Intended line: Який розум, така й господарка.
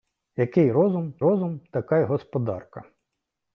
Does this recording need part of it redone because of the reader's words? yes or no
yes